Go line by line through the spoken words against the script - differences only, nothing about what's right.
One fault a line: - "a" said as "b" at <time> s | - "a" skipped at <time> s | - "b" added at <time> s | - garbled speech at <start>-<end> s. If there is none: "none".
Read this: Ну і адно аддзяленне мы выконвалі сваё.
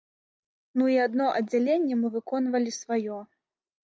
none